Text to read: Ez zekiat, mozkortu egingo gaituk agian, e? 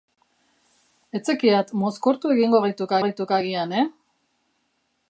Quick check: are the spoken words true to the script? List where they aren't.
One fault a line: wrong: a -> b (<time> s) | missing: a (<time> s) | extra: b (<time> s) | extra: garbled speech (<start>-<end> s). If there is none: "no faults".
extra: gaituk (3.0 s)